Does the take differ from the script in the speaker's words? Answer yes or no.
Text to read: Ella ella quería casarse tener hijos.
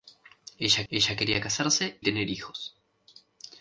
no